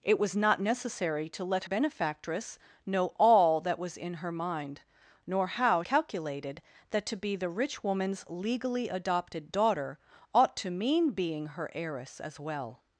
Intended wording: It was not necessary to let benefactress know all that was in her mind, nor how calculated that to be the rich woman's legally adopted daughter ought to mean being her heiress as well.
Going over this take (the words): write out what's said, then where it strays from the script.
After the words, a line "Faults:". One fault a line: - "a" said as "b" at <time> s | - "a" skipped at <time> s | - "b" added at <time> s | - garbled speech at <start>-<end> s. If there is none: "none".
It was not necessary to let benefactress know all that was in her mind, nor how calculated that to be the rich woman's legally adopted daughter ought to mean being her heiress as well.
Faults:
none